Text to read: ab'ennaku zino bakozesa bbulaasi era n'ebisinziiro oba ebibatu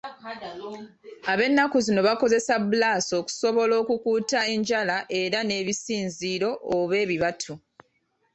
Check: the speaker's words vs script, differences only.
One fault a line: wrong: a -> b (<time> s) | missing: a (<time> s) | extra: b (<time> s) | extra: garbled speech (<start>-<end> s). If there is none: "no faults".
extra: okusobola okukuuta enjala (3.2 s)